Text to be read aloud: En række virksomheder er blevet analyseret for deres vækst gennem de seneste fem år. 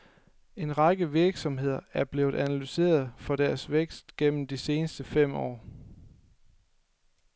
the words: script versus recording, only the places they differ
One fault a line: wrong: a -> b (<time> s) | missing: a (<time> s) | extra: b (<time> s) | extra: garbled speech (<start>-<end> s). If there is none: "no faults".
no faults